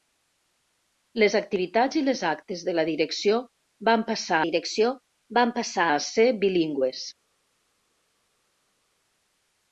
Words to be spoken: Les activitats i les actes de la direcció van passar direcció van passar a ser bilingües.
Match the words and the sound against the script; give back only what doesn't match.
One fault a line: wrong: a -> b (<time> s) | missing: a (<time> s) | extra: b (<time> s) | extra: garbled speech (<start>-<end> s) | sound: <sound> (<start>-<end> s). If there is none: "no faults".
no faults